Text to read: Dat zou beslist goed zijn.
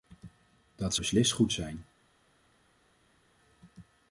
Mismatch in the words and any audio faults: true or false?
true